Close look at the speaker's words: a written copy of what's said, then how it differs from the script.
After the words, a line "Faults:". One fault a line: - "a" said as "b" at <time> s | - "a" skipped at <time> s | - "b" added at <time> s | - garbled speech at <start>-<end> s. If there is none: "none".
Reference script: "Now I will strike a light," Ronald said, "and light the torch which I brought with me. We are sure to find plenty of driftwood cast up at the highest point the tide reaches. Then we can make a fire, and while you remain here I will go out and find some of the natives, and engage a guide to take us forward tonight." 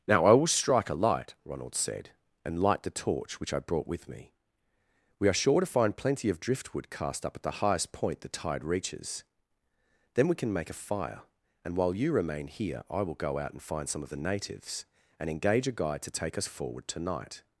"Now I will strike a light," Ronald said, "and light the torch which I brought with me. We are sure to find plenty of driftwood cast up at the highest point the tide reaches. Then we can make a fire, and while you remain here I will go out and find some of the natives, and engage a guide to take us forward tonight."
Faults:
none